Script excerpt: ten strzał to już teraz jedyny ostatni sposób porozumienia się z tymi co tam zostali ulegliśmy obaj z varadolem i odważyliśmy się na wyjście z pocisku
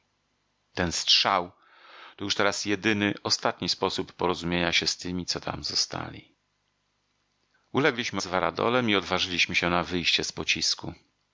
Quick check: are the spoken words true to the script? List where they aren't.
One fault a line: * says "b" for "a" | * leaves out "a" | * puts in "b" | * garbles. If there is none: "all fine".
* leaves out "obaj"